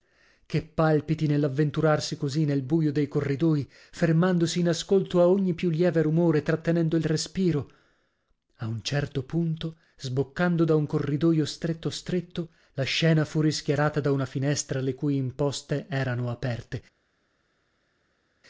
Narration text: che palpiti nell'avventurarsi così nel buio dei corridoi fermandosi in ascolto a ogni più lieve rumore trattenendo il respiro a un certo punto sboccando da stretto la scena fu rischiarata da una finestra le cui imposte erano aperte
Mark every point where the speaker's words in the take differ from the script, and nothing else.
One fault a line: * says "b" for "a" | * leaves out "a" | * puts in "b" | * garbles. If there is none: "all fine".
* puts in "un corridoio stretto"